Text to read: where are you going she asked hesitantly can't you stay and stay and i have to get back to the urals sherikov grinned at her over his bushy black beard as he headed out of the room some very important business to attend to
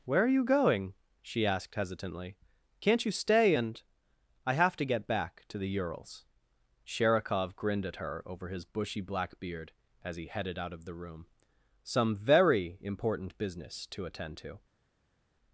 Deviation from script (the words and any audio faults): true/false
true